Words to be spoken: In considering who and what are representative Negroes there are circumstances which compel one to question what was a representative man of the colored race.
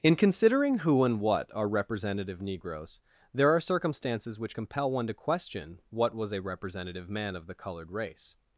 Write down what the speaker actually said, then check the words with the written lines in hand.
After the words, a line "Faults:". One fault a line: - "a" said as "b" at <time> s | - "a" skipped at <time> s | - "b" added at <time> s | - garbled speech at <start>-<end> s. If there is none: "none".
In considering who and what are representative Negroes there are circumstances which compel one to question what was a representative man of the colored race.
Faults:
none